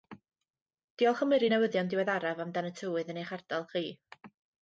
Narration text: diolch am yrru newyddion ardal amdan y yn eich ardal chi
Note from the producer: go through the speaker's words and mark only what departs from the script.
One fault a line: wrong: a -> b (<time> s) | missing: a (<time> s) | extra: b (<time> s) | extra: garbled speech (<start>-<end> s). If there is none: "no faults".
wrong: ardal -> diweddaraf (1.9 s)
extra: tywydd (2.8 s)